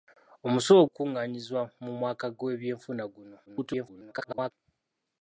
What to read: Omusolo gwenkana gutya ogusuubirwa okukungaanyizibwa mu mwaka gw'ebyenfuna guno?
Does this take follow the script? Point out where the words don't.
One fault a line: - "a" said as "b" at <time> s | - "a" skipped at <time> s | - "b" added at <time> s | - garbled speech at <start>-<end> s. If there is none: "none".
- "gwenkana gutya ogusuubirwa" skipped at 0.8 s
- garbled speech at 3.5-4.5 s